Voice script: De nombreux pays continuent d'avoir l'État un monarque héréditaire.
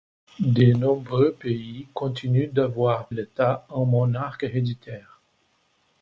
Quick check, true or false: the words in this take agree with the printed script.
true